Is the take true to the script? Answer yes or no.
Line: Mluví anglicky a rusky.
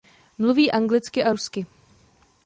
yes